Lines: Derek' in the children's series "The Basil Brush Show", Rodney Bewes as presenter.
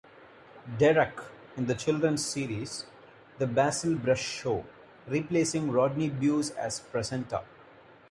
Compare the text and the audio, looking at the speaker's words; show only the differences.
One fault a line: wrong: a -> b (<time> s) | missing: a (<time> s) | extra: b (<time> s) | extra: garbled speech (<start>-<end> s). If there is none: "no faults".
extra: replacing (5.1 s)